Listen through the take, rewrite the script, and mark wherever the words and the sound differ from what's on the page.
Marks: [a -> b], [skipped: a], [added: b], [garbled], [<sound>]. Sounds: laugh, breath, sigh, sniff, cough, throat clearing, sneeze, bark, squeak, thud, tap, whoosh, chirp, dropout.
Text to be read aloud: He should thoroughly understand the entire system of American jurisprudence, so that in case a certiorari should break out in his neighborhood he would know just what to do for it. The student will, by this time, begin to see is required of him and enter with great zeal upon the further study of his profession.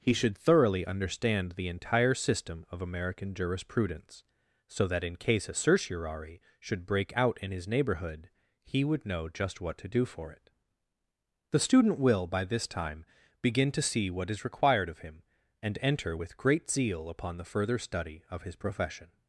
He should thoroughly understand the entire system of American jurisprudence, so that in case a certiorari should break out in his neighborhood he would know just what to do for it. The student will, by this time, begin to see [added: what] is required of him and enter with great zeal upon the further study of his profession.